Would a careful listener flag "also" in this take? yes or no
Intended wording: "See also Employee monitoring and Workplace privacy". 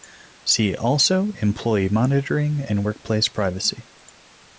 no